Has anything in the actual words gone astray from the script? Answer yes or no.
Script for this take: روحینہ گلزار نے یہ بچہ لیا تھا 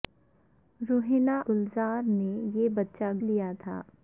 no